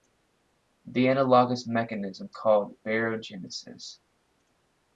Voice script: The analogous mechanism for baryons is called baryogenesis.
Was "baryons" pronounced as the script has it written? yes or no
no